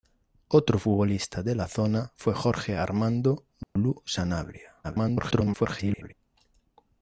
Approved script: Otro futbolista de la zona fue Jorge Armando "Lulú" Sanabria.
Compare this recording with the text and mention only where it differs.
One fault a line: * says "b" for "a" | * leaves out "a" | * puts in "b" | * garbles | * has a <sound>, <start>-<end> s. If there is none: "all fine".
* has a dropout, 3.6-3.8 s
* garbles